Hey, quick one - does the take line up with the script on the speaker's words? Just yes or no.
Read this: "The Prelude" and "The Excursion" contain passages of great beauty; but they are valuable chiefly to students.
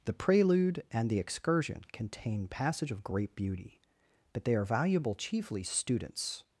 no